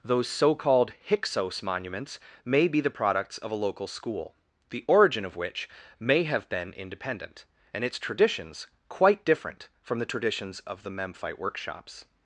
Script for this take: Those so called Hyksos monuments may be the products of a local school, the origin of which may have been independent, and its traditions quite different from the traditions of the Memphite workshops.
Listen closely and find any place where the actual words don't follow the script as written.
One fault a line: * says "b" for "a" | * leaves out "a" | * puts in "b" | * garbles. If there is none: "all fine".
all fine